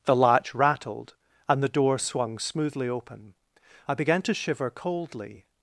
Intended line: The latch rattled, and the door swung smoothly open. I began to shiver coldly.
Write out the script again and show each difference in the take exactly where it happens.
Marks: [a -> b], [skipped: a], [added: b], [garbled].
The latch rattled, and the door swung smoothly open. I began to shiver coldly.